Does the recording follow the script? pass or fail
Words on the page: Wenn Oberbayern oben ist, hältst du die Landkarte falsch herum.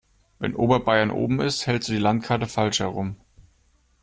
pass